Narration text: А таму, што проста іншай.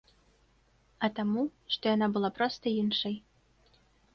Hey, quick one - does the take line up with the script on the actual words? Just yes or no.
no